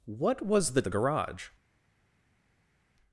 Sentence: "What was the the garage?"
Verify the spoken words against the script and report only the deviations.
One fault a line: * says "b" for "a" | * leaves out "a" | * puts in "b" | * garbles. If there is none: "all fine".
all fine